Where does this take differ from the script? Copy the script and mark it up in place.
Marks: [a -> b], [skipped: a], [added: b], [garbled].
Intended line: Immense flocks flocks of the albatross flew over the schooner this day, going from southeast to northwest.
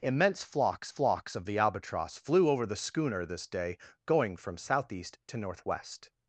Immense flocks flocks of the albatross flew over the schooner this day, going from southeast to northwest.